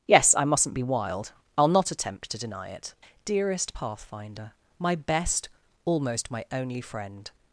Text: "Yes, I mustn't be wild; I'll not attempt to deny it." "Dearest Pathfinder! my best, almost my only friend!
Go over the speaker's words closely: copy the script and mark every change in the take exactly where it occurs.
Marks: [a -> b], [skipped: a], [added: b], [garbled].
"Yes, I mustn't be wild; I'll not attempt to deny it." "Dearest Pathfinder! my best, almost my only friend!